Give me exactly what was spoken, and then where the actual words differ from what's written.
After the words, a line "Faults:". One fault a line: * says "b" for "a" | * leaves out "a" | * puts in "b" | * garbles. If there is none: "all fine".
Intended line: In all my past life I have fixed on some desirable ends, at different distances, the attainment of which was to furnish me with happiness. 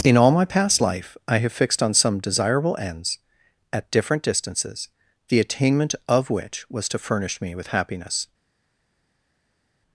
In all my past life I have fixed on some desirable ends, at different distances, the attainment of which was to furnish me with happiness.
Faults:
all fine